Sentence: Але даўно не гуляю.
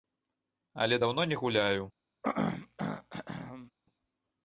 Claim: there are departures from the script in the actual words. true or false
false